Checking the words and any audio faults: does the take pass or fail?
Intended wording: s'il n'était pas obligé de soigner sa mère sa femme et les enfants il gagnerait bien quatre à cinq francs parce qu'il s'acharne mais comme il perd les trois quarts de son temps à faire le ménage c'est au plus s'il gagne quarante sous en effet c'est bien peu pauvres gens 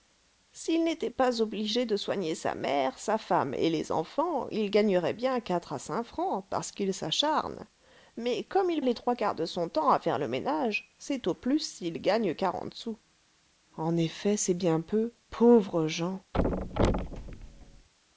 fail